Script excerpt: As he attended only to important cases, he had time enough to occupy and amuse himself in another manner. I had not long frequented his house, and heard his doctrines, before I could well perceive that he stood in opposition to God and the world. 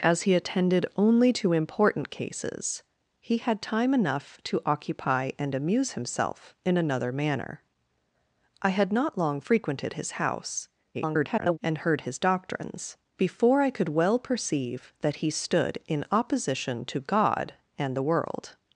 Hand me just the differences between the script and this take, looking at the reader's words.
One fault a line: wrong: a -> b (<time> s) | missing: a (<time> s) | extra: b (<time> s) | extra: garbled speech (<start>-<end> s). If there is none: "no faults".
extra: garbled speech (10.9-11.6 s)